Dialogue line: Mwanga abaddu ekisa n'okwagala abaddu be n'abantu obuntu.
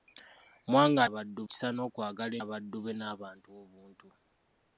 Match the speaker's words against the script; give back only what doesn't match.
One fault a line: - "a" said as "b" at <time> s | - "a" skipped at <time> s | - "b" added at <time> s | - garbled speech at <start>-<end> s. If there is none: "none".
none